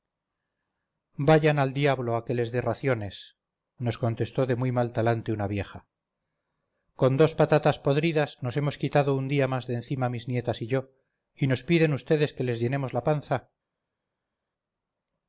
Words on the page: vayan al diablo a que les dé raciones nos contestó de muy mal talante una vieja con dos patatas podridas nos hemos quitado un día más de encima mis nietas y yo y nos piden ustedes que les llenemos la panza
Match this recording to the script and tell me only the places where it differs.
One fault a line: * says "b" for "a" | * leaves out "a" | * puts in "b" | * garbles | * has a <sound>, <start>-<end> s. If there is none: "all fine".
all fine